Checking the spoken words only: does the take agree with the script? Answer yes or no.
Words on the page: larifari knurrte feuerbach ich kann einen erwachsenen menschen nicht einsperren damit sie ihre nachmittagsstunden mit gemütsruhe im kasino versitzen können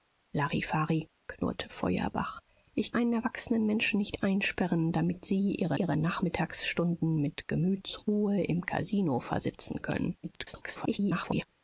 no